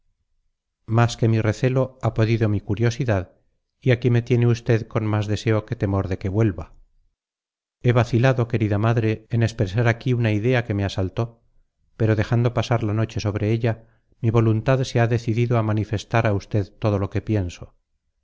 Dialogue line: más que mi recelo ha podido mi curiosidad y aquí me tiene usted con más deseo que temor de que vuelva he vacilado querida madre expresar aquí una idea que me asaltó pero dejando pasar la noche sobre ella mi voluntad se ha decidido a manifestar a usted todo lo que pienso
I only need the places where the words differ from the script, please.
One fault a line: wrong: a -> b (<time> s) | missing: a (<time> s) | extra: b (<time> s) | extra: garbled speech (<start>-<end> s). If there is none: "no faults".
extra: en (9.3 s)